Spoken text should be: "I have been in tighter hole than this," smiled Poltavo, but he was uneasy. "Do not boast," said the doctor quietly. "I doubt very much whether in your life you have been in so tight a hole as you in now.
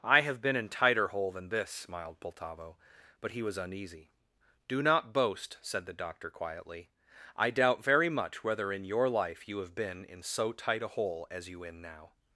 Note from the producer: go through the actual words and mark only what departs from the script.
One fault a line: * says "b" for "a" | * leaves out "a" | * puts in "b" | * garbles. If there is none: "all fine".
all fine